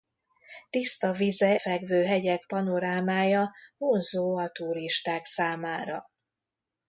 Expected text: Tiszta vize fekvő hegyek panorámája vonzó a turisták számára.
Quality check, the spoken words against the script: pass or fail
pass